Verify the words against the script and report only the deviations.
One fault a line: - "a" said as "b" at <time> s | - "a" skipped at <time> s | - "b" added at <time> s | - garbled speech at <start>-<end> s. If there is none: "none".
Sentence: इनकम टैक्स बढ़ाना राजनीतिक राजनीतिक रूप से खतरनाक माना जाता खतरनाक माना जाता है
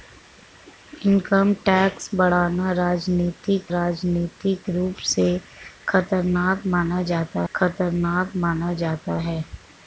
none